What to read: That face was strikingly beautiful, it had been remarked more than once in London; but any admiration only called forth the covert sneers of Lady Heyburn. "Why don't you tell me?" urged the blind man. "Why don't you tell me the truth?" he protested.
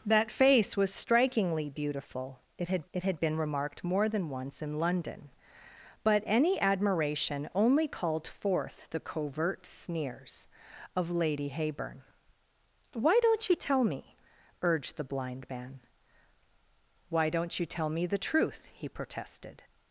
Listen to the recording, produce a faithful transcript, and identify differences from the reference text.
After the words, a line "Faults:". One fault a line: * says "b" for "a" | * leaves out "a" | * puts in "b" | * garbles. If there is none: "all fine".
That face was strikingly beautiful, it had it had been remarked more than once in London; but any admiration only called forth the covert sneers of Lady Heyburn. "Why don't you tell me?" urged the blind man. "Why don't you tell me the truth?" he protested.
Faults:
* puts in "it had"